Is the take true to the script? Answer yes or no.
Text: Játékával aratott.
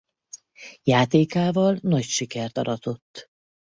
no